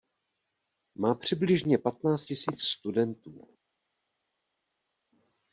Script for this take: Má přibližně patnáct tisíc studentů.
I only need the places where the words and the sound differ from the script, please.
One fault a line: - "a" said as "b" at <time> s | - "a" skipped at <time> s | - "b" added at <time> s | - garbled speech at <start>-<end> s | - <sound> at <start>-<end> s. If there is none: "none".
none